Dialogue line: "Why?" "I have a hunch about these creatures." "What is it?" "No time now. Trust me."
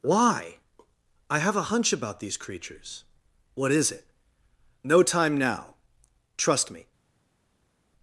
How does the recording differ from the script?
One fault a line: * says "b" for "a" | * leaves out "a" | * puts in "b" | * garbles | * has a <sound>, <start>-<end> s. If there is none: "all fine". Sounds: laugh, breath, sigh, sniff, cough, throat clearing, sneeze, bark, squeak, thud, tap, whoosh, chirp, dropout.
all fine